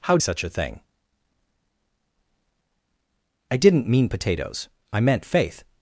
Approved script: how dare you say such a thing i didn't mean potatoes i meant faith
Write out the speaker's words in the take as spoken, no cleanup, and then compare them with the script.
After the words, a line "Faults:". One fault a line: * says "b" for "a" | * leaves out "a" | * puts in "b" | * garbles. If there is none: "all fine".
how such a thing i didn't mean potatoes i meant faith
Faults:
* leaves out "dare you say"